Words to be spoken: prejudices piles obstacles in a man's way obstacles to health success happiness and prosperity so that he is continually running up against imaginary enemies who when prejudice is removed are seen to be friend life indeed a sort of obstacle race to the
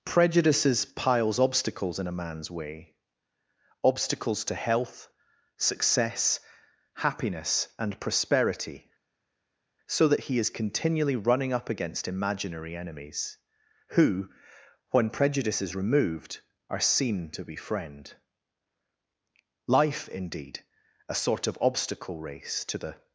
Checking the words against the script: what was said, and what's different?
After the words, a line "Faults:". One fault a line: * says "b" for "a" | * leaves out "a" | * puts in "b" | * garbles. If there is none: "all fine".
prejudices piles obstacles in a man's way obstacles to health success happiness and prosperity so that he is continually running up against imaginary enemies who when prejudice is removed are seen to be friend life indeed a sort of obstacle race to the
Faults:
all fine